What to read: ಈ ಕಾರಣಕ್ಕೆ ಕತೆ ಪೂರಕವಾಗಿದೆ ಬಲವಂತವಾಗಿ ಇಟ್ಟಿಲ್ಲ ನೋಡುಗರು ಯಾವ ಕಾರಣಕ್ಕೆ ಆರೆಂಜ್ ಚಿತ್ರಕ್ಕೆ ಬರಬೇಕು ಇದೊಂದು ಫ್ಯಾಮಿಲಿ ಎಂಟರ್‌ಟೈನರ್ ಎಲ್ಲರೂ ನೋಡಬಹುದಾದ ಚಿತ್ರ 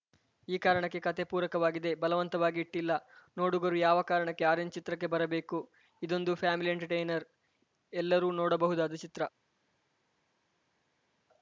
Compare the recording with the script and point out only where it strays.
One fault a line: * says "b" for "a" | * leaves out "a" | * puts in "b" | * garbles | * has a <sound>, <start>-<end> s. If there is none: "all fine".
all fine